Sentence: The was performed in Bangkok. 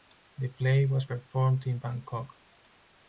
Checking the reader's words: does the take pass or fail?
fail